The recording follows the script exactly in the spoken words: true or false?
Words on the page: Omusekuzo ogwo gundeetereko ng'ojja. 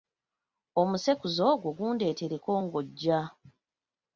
true